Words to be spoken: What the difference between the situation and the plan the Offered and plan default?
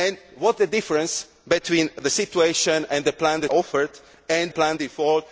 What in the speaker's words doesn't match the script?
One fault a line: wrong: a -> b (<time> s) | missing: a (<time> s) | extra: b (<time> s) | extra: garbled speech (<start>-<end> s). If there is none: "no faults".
no faults